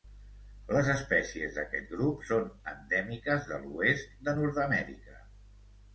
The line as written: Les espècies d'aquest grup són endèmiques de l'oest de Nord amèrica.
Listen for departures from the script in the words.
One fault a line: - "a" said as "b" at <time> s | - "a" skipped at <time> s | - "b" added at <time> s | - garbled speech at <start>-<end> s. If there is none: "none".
none